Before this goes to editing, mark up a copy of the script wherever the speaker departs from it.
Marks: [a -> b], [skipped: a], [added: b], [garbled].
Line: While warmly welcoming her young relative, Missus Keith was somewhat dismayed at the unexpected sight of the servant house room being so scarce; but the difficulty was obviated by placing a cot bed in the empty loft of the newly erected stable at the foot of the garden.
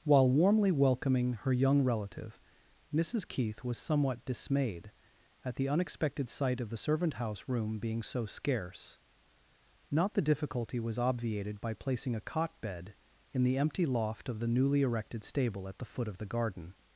While warmly welcoming her young relative, Missus Keith was somewhat dismayed at the unexpected sight of the servant house room being so scarce; [but -> not] the difficulty was obviated by placing a cot bed in the empty loft of the newly erected stable at the foot of the garden.